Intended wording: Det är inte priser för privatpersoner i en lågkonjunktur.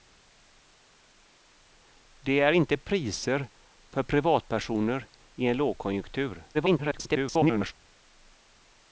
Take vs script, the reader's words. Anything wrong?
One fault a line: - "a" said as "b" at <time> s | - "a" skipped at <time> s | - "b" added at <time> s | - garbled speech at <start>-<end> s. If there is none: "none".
- garbled speech at 6.5-7.7 s